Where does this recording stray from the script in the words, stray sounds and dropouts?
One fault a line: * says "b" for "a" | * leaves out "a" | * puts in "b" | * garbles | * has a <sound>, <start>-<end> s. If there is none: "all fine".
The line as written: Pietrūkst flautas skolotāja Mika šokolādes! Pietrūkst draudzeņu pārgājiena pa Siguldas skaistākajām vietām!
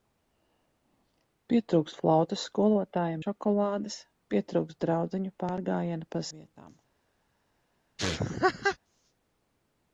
* leaves out "Mika"
* leaves out "Siguldas skaistākajām"
* has a laugh, 8.0-8.8 s